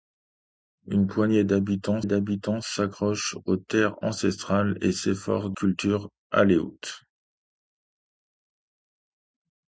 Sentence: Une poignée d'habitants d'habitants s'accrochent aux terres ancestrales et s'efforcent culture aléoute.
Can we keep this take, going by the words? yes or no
yes